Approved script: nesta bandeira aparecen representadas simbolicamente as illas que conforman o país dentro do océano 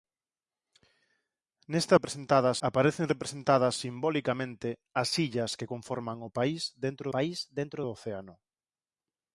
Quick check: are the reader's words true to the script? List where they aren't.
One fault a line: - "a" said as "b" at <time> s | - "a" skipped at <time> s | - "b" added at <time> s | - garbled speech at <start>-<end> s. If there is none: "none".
- "bandeira" said as "representadas" at 1.9 s
- "país dentro" added at 7.1 s